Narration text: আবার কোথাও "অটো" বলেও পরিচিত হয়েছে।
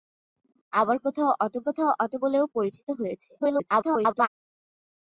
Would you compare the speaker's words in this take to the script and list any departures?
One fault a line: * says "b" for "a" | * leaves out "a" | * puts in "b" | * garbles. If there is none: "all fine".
* puts in "কোথাও অটো"
* garbles